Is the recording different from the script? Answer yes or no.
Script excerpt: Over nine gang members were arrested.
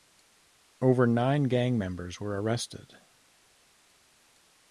no